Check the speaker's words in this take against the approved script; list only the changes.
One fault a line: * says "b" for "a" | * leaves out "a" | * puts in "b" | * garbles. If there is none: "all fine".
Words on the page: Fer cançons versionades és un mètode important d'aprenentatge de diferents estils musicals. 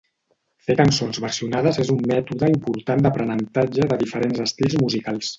all fine